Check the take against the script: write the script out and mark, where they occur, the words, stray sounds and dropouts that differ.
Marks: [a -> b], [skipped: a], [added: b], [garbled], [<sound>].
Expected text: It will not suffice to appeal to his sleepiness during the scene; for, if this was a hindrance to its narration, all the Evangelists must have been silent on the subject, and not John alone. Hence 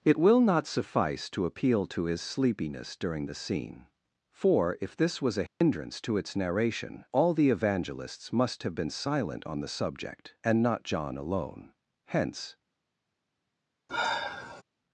It will not suffice to appeal to his sleepiness during the scene; for, if this was a hindrance [dropout] to its narration, all the Evangelists must have been silent on the subject, and not John alone. Hence [sigh]